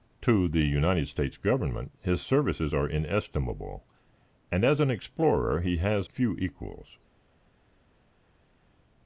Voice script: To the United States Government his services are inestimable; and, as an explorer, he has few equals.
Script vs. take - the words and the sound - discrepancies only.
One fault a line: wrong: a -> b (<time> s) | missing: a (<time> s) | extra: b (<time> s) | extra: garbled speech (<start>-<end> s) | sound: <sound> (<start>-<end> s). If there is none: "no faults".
no faults